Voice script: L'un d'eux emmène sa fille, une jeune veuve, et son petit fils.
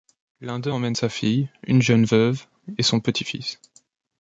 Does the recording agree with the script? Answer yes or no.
yes